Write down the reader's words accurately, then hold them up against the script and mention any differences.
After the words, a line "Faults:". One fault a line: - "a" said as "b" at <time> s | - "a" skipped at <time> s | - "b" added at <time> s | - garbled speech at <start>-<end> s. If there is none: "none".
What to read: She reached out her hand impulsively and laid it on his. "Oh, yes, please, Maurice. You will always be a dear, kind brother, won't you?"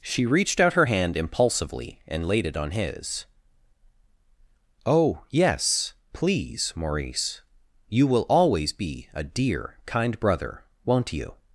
She reached out her hand impulsively and laid it on his. "Oh, yes, please, Maurice. You will always be a dear, kind brother, won't you?"
Faults:
none